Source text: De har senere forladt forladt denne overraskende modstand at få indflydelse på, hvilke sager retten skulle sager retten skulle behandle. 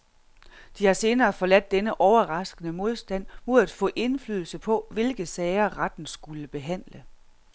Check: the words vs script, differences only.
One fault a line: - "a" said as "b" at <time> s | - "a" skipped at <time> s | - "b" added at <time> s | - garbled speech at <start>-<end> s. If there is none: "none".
- "forladt" skipped at 1.7 s
- "mod" added at 3.5 s
- "sager retten skulle" skipped at 6.5 s